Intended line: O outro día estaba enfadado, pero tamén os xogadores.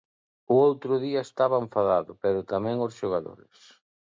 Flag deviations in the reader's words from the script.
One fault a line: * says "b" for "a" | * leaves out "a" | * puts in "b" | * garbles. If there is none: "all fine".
all fine